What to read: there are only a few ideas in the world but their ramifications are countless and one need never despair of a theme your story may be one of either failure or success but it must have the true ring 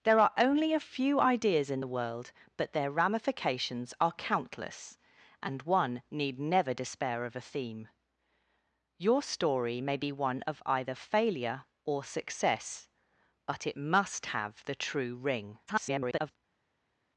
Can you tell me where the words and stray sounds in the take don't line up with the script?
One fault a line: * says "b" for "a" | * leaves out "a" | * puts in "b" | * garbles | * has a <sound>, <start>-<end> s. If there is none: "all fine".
* garbles